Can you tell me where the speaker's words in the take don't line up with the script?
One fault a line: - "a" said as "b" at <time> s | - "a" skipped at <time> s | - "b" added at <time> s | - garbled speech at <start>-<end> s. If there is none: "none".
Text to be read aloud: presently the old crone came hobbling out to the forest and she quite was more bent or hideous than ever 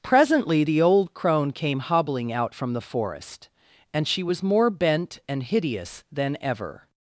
- "to" said as "from" at 2.5 s
- "quite" skipped at 4.2 s
- "or" said as "and" at 5.3 s